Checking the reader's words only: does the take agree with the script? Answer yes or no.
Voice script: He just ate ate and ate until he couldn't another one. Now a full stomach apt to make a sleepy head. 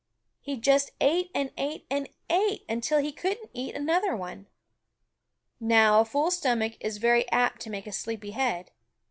no